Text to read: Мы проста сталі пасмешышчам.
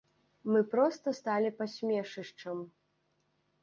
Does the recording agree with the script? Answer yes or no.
yes